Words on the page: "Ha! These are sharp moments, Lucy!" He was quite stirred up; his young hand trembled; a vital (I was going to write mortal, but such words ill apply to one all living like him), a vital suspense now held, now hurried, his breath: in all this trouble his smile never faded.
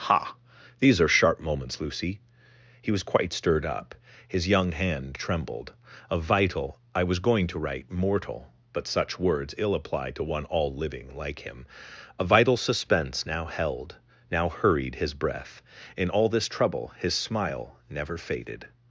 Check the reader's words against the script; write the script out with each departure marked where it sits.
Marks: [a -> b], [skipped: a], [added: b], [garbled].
"Ha! These are sharp moments, Lucy!" He was quite stirred up; his young hand trembled; a vital (I was going to write mortal, but such words ill apply to one all living like him), a vital suspense now held, now hurried, his breath: in all this trouble his smile never faded.